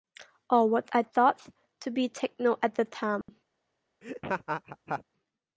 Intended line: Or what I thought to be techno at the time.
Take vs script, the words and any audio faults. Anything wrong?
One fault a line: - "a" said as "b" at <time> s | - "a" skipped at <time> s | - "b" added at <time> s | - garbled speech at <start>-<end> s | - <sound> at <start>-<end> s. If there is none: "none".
- dropout at 3.2-3.3 s
- laugh at 4.0-5.0 s